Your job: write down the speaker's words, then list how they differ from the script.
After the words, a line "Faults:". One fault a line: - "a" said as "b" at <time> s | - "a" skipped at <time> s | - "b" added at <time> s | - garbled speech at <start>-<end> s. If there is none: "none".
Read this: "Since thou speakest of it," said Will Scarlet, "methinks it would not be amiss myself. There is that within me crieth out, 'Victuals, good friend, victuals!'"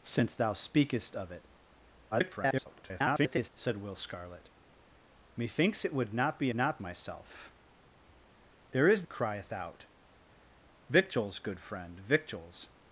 "Since thou speakest of it," [garbled] said Will Scarlet, "methinks it would not be not myself. There is crieth out, 'Victuals, good friend, victuals!'"
Faults:
- garbled speech at 2.1-3.5 s
- "amiss" said as "not" at 6.5 s
- "that within me" skipped at 9.0 s